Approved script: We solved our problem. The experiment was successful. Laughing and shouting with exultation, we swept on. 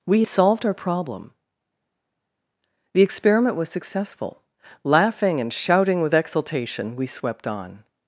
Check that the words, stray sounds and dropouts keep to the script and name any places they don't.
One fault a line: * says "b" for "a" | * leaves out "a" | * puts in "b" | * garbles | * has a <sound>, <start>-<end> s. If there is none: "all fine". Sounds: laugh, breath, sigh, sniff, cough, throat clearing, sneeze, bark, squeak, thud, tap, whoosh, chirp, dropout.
all fine